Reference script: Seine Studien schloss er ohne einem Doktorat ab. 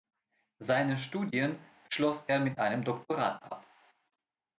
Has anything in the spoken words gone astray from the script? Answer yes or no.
yes